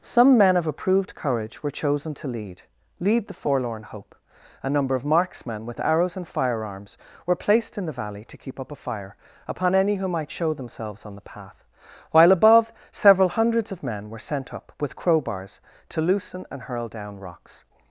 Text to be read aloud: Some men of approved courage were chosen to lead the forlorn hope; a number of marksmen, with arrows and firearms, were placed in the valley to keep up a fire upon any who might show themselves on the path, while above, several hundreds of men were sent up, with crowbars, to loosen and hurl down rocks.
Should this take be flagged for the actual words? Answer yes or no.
yes